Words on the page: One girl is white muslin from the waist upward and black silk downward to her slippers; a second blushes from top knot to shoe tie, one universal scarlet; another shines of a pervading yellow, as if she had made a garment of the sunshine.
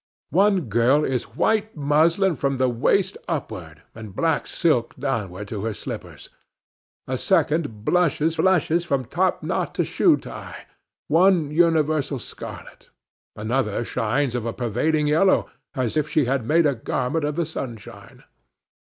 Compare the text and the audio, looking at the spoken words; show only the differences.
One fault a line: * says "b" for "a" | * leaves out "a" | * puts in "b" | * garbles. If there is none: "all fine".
* puts in "blushes"